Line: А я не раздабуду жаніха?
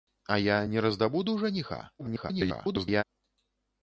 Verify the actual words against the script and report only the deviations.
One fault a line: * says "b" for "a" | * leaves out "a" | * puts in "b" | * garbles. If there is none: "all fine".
* garbles